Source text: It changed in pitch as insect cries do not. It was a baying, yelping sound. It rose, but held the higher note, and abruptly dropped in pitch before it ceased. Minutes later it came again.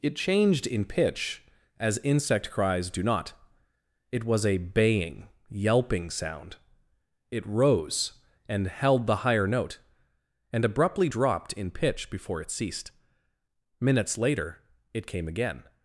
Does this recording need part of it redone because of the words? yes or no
yes